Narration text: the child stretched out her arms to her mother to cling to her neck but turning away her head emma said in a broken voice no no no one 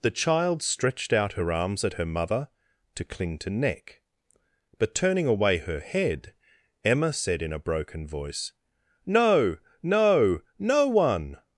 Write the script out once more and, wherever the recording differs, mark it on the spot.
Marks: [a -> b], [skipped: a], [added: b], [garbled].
the child stretched out her arms [to -> at] her mother to cling to [skipped: her] neck but turning away her head emma said in a broken voice no no no one